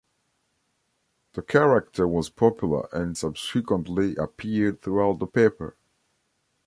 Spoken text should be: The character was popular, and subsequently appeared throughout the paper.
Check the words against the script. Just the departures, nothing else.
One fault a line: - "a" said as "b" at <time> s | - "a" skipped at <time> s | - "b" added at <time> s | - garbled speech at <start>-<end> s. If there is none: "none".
none